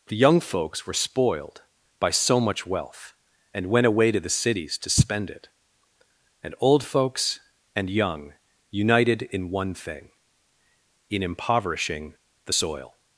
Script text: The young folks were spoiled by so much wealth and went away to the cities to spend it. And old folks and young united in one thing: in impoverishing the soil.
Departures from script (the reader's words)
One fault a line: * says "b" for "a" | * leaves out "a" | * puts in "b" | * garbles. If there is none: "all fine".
all fine